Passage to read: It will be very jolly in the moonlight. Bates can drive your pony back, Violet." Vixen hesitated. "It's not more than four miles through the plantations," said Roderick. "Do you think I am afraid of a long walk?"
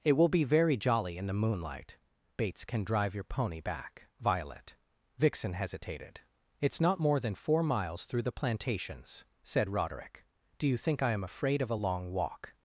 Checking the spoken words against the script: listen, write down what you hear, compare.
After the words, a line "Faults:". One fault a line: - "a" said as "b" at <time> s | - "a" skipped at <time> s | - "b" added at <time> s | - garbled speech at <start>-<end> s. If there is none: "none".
It will be very jolly in the moonlight. Bates can drive your pony back, Violet." Vixen hesitated. "It's not more than four miles through the plantations," said Roderick. "Do you think I am afraid of a long walk?"
Faults:
none